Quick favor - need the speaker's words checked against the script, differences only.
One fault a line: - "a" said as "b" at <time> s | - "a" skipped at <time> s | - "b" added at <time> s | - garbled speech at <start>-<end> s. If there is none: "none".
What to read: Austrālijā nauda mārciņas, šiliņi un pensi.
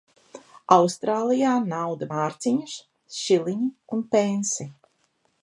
none